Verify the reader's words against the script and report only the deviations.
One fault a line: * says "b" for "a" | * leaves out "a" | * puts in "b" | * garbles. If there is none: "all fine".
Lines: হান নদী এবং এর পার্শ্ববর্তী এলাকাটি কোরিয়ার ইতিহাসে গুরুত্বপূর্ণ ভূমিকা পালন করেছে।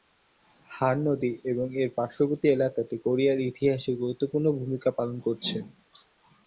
all fine